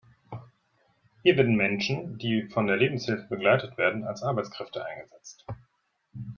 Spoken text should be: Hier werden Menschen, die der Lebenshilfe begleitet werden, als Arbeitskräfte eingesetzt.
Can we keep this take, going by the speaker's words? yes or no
no